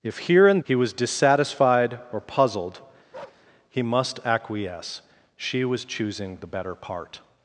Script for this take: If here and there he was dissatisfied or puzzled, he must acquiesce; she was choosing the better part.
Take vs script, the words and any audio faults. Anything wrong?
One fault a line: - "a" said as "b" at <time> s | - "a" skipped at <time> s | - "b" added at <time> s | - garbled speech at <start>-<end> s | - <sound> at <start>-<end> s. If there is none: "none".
- "there" skipped at 0.6 s
- bark at 3.1-3.5 s